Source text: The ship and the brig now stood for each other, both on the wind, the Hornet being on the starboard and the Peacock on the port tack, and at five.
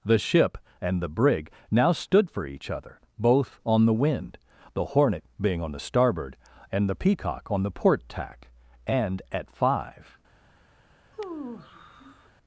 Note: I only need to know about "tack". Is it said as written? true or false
true